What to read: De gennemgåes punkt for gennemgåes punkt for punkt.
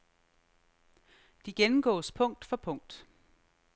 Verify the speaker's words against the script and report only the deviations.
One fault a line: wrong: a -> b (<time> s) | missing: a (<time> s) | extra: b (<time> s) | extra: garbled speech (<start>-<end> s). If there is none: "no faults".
missing: gennemgåes punkt for (2.6 s)